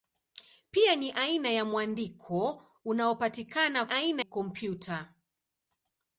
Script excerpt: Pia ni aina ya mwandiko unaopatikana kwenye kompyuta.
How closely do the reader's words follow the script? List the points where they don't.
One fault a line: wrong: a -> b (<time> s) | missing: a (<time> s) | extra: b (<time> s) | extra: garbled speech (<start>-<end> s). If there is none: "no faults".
wrong: kwenye -> aina (3.9 s)